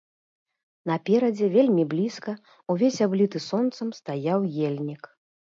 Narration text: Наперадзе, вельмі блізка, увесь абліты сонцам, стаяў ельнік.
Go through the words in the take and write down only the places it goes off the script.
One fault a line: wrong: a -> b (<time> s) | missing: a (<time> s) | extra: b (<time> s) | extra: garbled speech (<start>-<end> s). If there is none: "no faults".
no faults